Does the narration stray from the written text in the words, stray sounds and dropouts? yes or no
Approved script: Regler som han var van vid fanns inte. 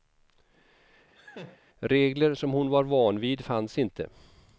yes